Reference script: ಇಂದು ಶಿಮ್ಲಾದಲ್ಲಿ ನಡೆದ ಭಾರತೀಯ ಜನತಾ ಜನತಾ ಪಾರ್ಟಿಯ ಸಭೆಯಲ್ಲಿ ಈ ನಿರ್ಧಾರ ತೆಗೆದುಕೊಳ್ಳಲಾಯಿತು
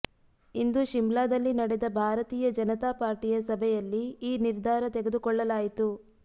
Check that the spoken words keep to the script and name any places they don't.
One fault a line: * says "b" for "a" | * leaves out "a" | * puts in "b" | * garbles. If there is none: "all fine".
* leaves out "ಜನತಾ"